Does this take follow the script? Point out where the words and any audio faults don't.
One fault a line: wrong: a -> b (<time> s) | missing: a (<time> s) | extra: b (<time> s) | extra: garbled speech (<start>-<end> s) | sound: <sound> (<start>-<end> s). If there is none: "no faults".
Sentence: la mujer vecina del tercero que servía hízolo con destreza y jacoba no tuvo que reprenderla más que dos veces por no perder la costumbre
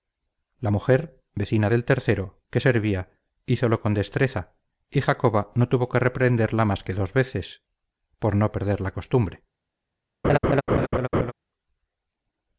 sound: laugh (10.2-11.3 s)